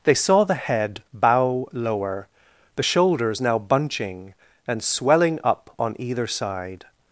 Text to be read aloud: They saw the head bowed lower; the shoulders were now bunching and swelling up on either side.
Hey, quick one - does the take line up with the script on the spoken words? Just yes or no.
no